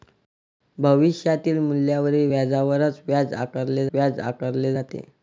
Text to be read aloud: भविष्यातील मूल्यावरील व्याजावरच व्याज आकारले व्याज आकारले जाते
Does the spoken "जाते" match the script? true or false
true